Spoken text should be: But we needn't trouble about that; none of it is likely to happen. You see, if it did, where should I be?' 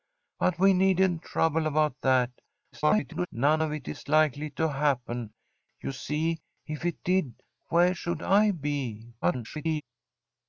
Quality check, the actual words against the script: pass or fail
fail